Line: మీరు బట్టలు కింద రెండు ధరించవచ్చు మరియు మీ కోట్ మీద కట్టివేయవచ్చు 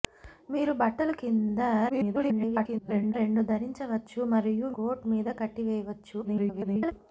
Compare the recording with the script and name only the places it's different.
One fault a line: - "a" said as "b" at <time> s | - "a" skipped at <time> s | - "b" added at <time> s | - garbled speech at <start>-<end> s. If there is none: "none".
- garbled speech at 1.9-3.1 s
- "మీ" skipped at 4.7 s
- garbled speech at 6.2-6.9 s